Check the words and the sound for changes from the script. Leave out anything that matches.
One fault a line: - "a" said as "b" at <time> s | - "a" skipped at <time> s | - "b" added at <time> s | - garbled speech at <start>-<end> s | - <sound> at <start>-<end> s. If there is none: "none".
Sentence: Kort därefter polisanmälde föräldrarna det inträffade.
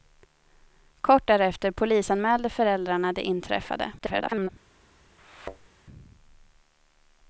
- garbled speech at 4.0-4.5 s
- thud at 5.2-5.7 s